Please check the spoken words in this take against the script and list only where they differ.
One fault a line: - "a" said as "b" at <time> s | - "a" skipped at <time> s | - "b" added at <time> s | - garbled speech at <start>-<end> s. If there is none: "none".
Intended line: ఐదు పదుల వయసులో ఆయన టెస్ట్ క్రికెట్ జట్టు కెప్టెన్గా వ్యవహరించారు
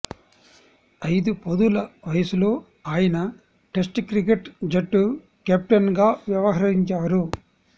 none